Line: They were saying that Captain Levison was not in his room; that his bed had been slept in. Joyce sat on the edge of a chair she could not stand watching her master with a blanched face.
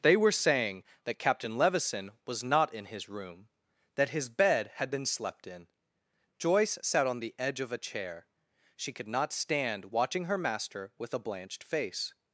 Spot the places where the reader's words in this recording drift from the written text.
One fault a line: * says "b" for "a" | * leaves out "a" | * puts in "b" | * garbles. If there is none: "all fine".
all fine